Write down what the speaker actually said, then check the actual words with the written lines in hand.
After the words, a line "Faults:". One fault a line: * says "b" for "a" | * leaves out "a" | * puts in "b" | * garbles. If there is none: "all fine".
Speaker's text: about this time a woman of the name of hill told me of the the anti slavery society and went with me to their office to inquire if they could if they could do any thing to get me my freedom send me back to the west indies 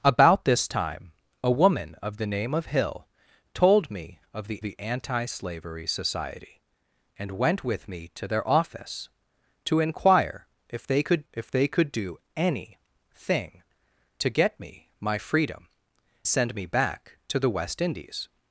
about this time a woman of the name of hill told me of the the anti slavery society and went with me to their office to inquire if they could if they could do any thing to get me my freedom send me back to the west indies
Faults:
all fine